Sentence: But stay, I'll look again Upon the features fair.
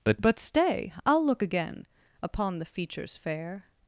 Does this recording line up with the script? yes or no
no